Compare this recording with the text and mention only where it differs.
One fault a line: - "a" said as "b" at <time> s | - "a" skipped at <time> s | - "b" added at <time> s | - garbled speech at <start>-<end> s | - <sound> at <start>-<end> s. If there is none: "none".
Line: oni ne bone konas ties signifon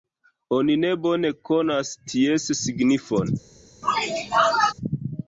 - sneeze at 3.8-4.7 s